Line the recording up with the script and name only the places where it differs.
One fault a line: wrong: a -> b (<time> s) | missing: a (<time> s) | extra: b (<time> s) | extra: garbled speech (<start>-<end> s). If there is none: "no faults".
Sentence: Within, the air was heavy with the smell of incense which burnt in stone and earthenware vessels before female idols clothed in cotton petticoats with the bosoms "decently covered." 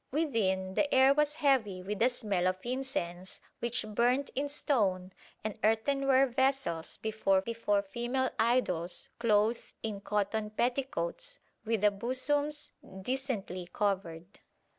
extra: before (7.4 s)